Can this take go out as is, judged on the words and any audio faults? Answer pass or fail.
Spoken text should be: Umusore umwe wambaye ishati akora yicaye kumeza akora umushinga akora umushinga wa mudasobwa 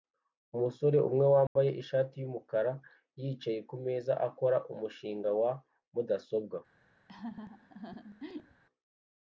fail